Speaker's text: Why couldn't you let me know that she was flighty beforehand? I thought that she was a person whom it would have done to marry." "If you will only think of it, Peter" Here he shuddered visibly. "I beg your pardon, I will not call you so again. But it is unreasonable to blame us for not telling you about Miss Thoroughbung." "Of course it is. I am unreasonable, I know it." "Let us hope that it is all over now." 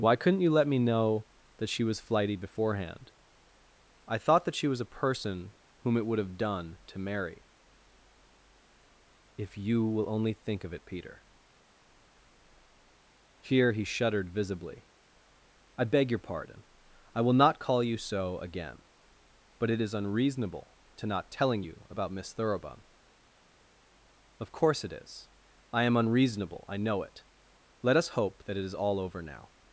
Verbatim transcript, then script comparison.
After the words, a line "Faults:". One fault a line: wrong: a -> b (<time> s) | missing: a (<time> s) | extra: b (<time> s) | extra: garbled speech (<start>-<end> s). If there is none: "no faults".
Why couldn't you let me know that she was flighty beforehand? I thought that she was a person whom it would have done to marry." "If you will only think of it, Peter" Here he shuddered visibly. "I beg your pardon, I will not call you so again. But it is unreasonable to not telling you about Miss Thoroughbung." "Of course it is. I am unreasonable, I know it." "Let us hope that it is all over now."
Faults:
missing: blame us for (21.1 s)